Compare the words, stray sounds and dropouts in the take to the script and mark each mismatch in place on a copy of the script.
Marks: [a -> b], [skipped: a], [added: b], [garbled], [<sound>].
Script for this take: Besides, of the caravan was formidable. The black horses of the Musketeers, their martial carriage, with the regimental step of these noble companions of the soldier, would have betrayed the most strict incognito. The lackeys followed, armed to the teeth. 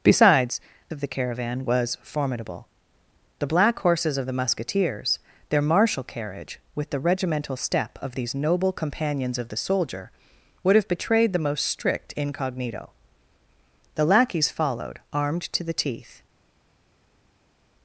Besides, of the caravan was formidable. The black horses of the Musketeers, their martial carriage, with the regimental step of these noble companions of the soldier, would have betrayed the most strict incognito. The lackeys followed, armed to the teeth.